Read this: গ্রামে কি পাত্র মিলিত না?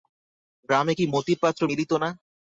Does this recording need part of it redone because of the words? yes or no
yes